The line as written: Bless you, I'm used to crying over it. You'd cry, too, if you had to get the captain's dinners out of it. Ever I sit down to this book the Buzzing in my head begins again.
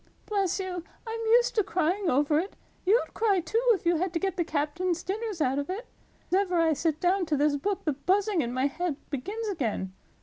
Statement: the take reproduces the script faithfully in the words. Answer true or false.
true